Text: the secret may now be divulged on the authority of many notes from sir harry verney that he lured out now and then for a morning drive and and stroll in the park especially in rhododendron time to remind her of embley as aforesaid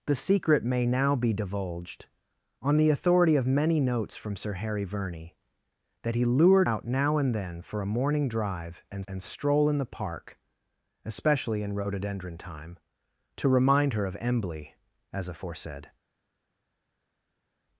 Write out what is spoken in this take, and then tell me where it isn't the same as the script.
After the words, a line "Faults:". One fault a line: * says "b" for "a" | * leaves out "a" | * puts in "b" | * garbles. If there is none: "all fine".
the secret may now be divulged on the authority of many notes from sir harry verney that he lured out now and then for a morning drive and and stroll in the park especially in rhododendron time to remind her of embley as aforesaid
Faults:
all fine